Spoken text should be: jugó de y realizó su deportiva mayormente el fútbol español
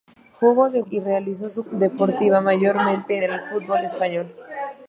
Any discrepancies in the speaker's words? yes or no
no